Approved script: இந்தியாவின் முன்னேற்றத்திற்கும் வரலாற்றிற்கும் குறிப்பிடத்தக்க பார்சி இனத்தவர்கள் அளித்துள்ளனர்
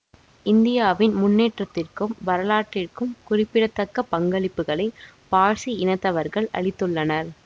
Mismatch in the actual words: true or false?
true